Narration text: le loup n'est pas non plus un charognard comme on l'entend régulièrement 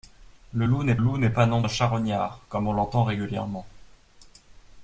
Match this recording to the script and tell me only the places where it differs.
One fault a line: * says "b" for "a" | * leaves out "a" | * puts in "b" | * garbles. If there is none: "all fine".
* puts in "loup n'est"
* leaves out "plus"